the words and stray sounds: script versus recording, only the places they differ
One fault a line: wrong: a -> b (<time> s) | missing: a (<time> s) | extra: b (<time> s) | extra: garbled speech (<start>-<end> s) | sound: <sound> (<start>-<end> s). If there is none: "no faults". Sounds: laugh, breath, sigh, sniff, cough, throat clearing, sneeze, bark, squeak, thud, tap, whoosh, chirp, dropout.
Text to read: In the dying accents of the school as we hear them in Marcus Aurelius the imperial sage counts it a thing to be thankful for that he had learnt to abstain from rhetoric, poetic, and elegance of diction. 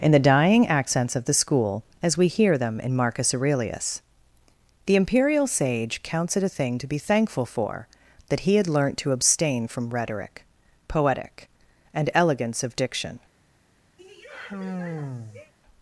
sound: sigh (14.0-15.5 s)